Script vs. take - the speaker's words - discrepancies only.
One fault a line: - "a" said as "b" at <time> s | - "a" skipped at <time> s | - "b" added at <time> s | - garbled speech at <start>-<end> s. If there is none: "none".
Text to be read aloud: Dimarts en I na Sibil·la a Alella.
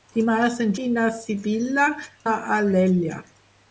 none